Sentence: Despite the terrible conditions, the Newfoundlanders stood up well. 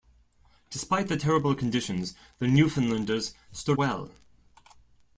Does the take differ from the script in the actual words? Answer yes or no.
yes